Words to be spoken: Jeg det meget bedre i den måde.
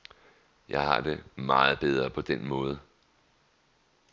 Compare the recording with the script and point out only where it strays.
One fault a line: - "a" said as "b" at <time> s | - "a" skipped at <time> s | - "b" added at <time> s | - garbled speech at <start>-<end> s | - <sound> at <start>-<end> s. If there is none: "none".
- "har" added at 0.8 s
- "i" said as "på" at 2.1 s